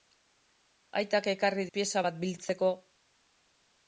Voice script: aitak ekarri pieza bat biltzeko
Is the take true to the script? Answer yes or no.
yes